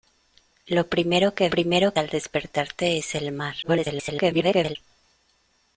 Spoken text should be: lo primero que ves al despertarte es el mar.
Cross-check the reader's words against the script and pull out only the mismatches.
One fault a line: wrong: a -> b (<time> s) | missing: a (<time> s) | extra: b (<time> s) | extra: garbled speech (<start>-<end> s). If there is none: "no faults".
wrong: ves -> primero (1.5 s)
extra: garbled speech (3.6-4.8 s)